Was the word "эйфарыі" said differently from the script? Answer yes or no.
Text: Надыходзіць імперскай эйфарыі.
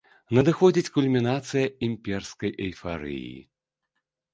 no